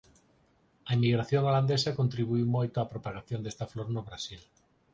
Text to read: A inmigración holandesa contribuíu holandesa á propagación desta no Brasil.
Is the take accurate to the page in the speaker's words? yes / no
no